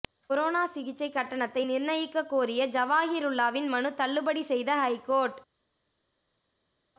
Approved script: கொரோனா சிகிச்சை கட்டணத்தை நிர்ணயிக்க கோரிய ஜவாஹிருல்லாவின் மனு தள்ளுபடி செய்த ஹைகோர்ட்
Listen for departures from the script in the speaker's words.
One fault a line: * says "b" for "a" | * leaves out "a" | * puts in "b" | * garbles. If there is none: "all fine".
all fine